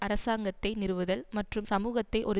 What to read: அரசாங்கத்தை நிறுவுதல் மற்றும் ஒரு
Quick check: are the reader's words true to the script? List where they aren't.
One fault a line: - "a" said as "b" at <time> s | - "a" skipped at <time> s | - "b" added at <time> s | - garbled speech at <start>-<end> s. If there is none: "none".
- "சமூகத்தை" added at 1.6 s